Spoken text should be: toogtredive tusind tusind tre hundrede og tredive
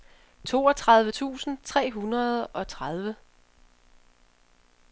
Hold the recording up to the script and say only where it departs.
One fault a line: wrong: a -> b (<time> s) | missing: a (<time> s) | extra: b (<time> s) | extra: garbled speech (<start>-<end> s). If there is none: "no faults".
missing: tusind (1.6 s)